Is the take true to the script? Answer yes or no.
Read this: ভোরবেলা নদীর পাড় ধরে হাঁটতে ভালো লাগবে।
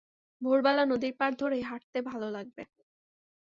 yes